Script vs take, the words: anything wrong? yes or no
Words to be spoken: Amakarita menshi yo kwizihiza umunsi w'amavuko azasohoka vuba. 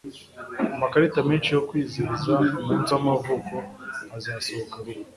no